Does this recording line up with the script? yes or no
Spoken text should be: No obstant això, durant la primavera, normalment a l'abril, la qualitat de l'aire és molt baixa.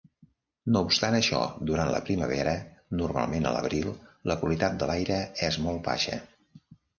yes